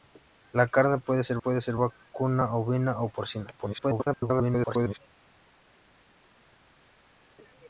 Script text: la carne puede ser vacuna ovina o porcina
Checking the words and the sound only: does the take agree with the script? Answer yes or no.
no